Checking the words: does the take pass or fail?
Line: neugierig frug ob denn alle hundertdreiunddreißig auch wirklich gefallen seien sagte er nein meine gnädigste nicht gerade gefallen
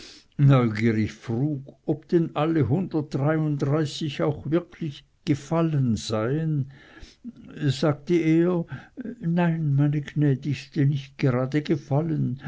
pass